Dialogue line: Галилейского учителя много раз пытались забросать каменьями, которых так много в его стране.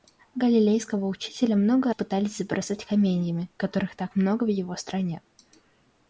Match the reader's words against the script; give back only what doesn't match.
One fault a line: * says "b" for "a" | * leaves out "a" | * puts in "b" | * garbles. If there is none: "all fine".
* leaves out "раз"